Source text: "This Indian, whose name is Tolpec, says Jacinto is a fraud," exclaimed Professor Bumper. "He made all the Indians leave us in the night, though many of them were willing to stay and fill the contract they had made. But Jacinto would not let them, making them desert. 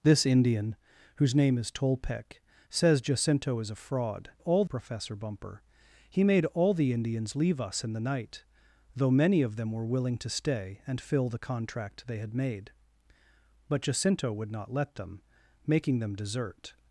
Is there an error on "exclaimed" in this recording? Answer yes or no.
yes